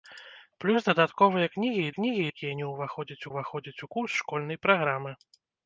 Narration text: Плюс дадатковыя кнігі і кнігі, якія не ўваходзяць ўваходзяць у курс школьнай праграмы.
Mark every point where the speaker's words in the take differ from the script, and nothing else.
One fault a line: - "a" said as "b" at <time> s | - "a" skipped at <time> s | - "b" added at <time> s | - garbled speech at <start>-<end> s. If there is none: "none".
none